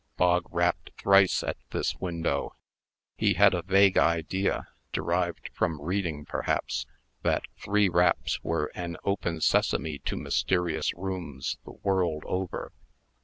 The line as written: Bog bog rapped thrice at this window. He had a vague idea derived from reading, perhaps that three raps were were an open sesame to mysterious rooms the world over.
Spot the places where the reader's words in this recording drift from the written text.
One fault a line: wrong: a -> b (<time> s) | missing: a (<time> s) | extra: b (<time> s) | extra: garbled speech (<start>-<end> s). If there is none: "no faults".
missing: bog (0.5 s)
missing: were (8.7 s)